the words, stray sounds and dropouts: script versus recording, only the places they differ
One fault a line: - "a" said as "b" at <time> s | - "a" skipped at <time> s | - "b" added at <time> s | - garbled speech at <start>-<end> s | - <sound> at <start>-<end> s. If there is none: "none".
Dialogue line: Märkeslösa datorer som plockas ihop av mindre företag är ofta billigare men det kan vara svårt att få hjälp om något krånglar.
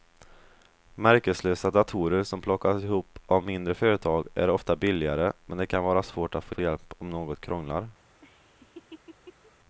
- "få" added at 6.5 s
- laugh at 8.2-9.5 s